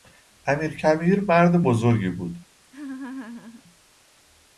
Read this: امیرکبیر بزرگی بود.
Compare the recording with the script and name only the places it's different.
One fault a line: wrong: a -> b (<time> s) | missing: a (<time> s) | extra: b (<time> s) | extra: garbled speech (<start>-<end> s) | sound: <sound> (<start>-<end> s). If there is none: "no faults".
extra: مرد (1.2 s)
sound: laugh (2.6-3.6 s)